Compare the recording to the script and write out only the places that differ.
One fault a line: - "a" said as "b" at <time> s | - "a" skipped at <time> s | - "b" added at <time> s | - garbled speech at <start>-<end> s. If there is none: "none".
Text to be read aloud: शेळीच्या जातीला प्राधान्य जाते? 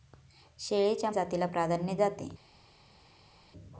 none